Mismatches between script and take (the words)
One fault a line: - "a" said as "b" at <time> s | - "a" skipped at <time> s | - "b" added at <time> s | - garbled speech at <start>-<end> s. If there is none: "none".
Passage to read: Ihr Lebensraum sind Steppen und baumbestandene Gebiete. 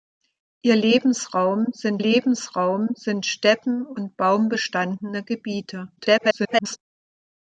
- "Lebensraum sind" added at 2.0 s
- garbled speech at 6.0-6.8 s